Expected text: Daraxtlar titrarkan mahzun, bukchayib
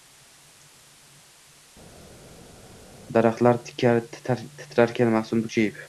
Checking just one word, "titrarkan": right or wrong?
right